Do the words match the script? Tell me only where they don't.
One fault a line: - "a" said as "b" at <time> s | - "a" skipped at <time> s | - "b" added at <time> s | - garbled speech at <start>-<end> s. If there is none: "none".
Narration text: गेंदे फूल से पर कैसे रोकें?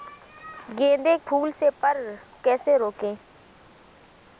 none